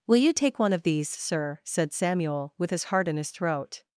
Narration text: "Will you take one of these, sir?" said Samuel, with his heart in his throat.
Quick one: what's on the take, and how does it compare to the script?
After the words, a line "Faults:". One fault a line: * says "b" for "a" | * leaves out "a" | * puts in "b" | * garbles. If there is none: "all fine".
"Will you take one of these, sir?" said Samuel, with his heart in his throat.
Faults:
all fine